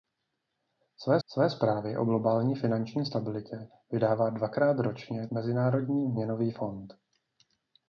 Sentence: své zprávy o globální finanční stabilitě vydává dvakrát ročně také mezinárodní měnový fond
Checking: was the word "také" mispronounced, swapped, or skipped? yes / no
yes